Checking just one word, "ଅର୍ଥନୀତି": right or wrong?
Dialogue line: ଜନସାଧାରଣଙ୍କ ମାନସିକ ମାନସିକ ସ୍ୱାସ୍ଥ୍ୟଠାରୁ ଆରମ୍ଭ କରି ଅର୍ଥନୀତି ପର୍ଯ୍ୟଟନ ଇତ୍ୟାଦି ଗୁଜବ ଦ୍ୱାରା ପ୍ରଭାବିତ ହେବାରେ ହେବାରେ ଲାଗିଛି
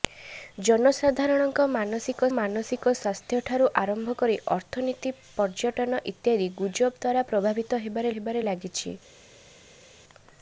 right